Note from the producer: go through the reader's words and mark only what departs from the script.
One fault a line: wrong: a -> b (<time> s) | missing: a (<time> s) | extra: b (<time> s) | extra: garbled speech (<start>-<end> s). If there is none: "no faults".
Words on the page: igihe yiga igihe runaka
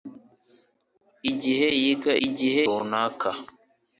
no faults